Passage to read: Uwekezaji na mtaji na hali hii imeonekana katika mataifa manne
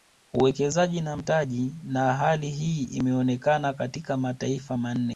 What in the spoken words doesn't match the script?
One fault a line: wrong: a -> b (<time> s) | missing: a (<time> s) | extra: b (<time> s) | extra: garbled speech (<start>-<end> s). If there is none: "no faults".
no faults